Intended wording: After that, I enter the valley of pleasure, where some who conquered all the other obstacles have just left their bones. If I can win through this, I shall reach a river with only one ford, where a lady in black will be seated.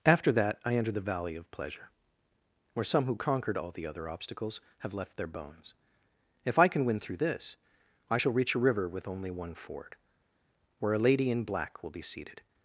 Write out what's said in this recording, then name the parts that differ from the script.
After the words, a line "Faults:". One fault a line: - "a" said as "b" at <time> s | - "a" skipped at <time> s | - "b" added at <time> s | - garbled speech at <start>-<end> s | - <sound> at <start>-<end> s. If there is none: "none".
After that, I enter the valley of pleasure, where some who conquered all the other obstacles have left their bones. If I can win through this, I shall reach a river with only one ford, where a lady in black will be seated.
Faults:
- "just" skipped at 5.0 s